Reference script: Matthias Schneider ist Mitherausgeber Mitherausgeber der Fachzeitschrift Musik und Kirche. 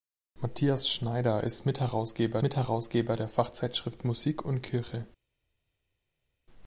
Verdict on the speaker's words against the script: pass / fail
pass